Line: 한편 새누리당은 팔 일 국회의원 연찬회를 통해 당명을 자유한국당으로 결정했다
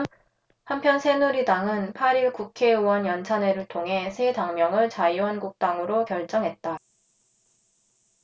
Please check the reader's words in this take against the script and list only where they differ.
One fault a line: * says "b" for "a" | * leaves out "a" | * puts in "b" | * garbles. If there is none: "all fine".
* puts in "새"